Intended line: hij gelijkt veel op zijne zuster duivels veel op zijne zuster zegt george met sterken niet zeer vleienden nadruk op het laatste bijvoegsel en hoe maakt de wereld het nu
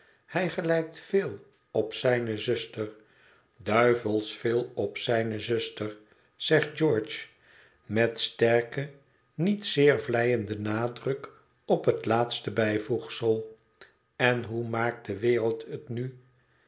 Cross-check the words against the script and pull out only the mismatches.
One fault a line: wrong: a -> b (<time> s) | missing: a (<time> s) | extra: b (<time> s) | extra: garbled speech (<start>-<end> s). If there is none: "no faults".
no faults